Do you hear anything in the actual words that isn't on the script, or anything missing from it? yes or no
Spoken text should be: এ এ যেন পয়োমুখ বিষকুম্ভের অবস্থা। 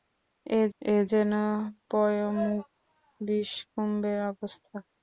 no